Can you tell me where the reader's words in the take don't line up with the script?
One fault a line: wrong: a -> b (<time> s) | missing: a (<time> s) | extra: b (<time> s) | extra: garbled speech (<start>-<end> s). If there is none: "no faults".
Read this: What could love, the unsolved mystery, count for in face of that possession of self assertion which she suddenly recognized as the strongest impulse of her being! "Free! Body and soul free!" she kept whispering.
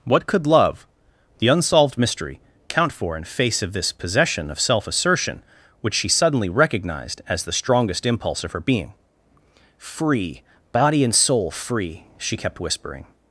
wrong: that -> this (3.7 s)